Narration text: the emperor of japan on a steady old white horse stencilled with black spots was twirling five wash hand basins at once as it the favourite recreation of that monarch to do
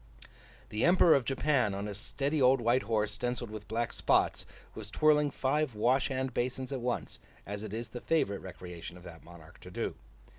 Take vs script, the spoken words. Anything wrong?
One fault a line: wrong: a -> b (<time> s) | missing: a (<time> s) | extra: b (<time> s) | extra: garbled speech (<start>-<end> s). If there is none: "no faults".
extra: is (7.7 s)